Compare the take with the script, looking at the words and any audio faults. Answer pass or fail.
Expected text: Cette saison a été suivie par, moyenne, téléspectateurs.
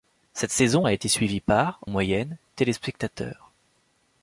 pass